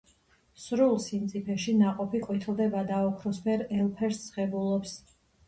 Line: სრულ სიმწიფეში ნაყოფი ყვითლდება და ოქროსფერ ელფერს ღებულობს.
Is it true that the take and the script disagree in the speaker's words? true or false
false